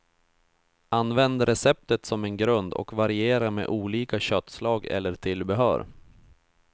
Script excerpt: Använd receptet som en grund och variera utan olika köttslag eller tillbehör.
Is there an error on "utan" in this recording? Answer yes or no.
yes